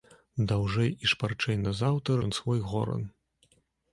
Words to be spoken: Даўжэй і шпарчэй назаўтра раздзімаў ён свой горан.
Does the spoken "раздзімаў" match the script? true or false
false